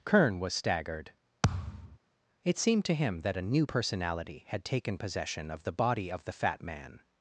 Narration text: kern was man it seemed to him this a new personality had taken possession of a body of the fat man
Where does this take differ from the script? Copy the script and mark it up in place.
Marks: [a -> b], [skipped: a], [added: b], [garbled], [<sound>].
kern was [man -> staggered] [thud] it seemed to him [this -> that] a new personality had taken possession of [a -> the] body of the fat man